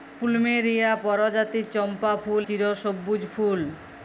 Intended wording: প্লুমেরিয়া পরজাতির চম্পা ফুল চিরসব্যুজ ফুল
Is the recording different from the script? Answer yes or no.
no